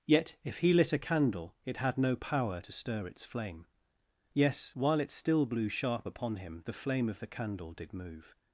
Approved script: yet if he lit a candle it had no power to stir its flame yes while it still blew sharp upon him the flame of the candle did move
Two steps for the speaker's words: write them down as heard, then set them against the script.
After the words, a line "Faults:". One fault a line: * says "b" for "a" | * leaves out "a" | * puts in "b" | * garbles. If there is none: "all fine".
yet if he lit a candle it had no power to stir its flame yes while it still blew sharp upon him the flame of the candle did move
Faults:
all fine